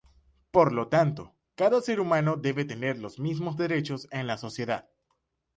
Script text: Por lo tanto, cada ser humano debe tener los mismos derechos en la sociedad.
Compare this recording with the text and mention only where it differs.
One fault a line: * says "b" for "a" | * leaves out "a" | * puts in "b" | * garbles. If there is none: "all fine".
all fine